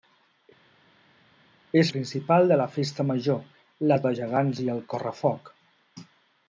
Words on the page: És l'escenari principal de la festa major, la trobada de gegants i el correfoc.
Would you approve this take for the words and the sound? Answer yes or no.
no